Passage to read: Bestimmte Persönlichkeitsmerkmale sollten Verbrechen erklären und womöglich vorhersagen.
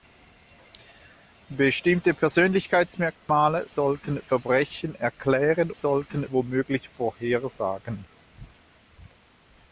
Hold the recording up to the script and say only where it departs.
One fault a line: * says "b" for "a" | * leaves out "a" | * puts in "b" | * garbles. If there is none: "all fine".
* says "sollten" for "und"